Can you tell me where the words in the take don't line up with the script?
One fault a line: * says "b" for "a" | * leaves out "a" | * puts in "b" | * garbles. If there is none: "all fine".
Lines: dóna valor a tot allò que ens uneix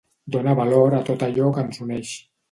all fine